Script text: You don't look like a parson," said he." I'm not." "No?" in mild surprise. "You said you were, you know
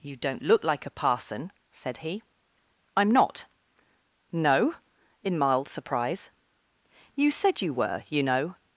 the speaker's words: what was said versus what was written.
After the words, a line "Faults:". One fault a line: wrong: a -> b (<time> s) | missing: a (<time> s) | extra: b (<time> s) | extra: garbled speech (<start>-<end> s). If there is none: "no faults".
You don't look like a parson," said he." I'm not." "No?" in mild surprise. "You said you were, you know
Faults:
no faults